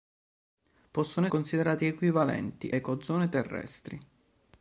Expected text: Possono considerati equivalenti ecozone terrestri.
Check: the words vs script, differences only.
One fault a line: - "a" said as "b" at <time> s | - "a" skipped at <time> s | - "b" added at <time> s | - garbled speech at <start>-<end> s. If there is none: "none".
none